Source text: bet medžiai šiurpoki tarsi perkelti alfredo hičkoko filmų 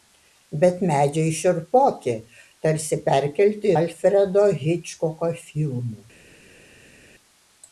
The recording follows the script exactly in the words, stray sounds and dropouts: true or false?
true